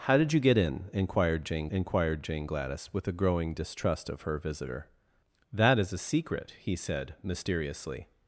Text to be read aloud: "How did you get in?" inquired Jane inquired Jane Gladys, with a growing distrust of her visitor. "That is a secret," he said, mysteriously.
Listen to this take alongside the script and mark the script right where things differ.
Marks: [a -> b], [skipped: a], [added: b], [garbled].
"How did you get in?" inquired Jane inquired Jane Gladys, with a growing distrust of her visitor. "That is a secret," he said, mysteriously.